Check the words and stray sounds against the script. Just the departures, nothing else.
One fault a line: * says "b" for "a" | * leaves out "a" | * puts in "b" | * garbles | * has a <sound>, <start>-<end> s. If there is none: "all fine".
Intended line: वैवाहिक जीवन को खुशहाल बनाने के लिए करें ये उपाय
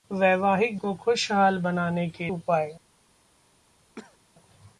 * leaves out "जीवन"
* leaves out "लिए करें ये"
* has a cough, 4.0-4.2 s